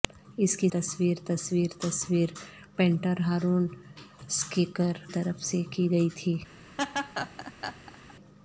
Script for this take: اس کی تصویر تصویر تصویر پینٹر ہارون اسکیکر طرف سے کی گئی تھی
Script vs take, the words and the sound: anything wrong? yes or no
yes